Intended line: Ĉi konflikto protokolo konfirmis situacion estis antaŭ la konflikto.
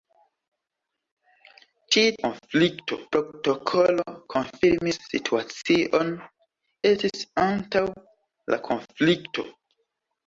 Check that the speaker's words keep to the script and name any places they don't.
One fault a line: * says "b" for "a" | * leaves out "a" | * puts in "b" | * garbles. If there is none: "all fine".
all fine